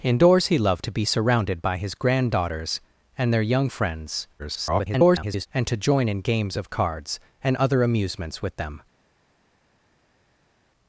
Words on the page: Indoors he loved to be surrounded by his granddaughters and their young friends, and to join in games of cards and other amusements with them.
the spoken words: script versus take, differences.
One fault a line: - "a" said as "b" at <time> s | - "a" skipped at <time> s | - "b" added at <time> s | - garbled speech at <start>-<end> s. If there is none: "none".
- garbled speech at 4.4-5.5 s